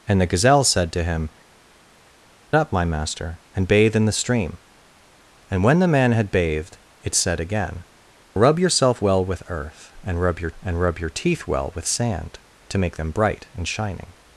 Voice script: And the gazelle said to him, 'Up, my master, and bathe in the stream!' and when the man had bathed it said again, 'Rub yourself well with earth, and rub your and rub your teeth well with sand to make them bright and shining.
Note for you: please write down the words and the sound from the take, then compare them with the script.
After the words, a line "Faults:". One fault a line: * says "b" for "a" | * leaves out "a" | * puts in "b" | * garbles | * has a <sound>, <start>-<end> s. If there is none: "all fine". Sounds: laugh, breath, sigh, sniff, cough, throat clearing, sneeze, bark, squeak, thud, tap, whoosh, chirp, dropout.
And the gazelle said to him, 'Up, my master, and bathe in the stream!' and when the man had bathed it said again, 'Rub yourself well with earth, and rub your and rub your teeth well with sand to make them bright and shining.
Faults:
all fine